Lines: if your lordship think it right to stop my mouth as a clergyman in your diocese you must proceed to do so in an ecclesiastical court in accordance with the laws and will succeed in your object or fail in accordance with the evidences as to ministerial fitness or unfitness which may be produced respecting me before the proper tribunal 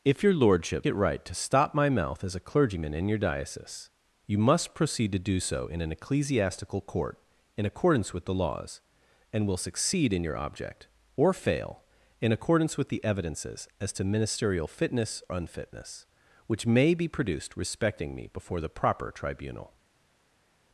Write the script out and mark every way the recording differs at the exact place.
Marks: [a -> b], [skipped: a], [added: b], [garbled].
if your lordship [skipped: think] it right to stop my mouth as a clergyman in your diocese you must proceed to do so in an ecclesiastical court in accordance with the laws and will succeed in your object or fail in accordance with the evidences as to ministerial fitness [skipped: or] unfitness which may be produced respecting me before the proper tribunal